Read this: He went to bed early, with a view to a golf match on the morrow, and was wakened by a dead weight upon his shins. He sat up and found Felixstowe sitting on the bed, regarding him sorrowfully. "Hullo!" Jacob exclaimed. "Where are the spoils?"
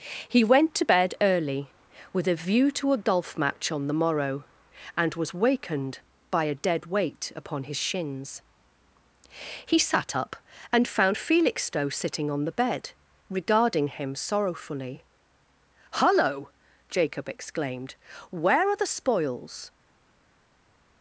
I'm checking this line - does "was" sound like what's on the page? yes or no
yes